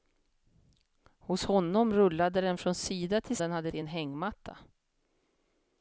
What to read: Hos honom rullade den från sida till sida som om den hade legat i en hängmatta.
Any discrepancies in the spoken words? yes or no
yes